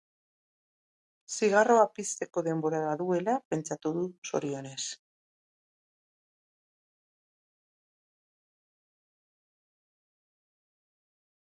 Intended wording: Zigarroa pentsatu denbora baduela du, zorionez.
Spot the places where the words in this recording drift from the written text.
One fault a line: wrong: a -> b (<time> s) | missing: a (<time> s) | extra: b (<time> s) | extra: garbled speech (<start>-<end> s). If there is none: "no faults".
wrong: pentsatu -> pizteko (2.0 s)
extra: pentsatu (3.5 s)